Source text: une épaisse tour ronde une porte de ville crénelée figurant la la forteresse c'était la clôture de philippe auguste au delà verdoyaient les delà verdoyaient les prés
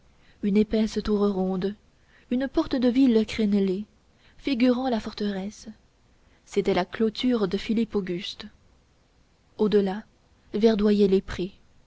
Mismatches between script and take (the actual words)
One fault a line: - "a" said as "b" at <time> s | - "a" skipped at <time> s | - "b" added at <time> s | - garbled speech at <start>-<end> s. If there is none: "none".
- "la" skipped at 5.0 s
- "delà verdoyaient les" skipped at 11.2 s